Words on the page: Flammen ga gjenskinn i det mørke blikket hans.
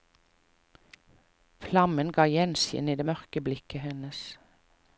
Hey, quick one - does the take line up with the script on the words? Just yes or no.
no